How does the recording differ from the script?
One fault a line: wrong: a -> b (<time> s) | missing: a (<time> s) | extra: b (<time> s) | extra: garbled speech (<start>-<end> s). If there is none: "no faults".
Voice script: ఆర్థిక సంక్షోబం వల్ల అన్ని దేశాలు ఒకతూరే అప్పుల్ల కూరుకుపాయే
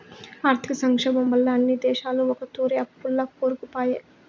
no faults